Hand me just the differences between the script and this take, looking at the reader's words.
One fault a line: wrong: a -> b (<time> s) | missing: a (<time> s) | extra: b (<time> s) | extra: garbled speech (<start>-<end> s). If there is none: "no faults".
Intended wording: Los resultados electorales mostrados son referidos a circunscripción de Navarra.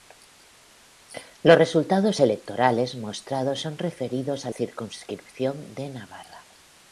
no faults